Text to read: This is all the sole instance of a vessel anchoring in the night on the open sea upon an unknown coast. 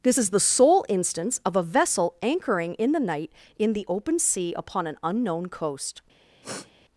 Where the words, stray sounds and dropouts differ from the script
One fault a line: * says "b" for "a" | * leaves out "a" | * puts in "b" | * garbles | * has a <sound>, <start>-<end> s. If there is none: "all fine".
* leaves out "all"
* says "in" for "on"
* has a sniff, 6.4-6.7 s